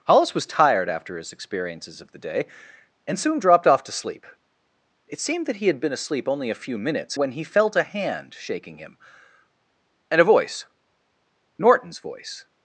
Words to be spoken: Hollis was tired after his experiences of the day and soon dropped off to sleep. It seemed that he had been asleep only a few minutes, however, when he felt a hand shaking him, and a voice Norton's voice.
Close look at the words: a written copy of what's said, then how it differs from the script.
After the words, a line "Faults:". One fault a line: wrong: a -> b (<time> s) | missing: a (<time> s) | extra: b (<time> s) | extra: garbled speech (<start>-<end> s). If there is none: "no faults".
Hollis was tired after his experiences of the day and soon dropped off to sleep. It seemed that he had been asleep only a few minutes, when he felt a hand shaking him, and a voice Norton's voice.
Faults:
missing: however (7.2 s)